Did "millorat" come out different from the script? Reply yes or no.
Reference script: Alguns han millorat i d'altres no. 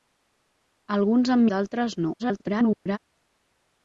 yes